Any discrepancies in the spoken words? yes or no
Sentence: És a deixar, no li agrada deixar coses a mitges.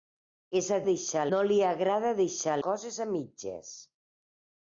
no